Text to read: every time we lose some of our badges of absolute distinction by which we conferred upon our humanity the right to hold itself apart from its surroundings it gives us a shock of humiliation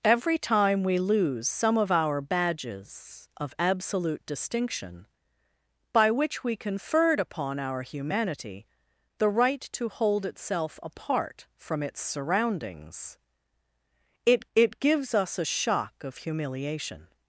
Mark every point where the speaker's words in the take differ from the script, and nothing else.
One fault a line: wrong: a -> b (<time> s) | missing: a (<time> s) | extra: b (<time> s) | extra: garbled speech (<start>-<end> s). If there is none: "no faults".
extra: it (14.5 s)